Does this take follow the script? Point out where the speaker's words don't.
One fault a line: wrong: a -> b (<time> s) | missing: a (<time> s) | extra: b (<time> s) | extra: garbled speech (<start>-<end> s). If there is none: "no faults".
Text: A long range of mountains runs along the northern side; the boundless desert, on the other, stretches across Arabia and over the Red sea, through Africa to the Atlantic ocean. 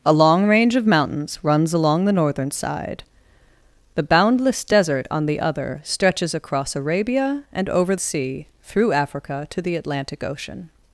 missing: the Red (8.0 s)